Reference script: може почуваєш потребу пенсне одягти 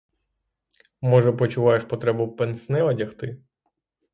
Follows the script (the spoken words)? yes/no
yes